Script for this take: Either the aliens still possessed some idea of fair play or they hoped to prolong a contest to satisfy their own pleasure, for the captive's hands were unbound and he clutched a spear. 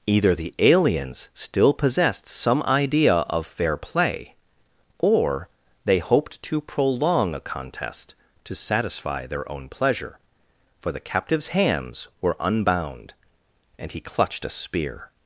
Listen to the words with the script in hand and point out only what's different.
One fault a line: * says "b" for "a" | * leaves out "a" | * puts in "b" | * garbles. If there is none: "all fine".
all fine